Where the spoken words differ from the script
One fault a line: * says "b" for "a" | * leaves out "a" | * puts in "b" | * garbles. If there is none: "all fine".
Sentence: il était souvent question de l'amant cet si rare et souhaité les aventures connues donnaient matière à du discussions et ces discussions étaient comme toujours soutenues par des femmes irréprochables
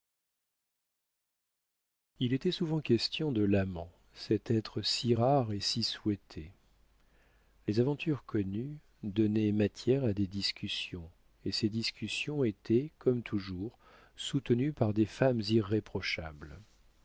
* puts in "être"
* puts in "si"
* says "des" for "du"